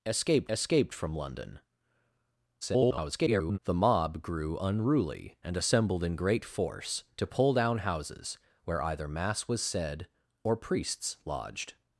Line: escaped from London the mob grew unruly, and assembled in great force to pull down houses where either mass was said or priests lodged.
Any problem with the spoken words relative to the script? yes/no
yes